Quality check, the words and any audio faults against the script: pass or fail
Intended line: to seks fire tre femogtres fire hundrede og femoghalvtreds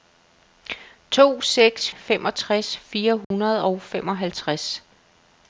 fail